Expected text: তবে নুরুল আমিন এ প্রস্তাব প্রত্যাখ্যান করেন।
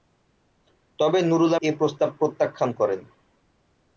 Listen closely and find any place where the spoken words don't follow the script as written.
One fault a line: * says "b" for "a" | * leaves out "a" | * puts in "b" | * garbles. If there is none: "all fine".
* leaves out "আমিন"